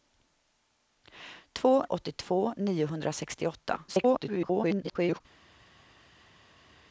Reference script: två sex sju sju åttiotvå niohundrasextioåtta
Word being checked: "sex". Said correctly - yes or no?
no